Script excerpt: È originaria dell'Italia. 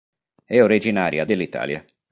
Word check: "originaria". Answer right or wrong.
right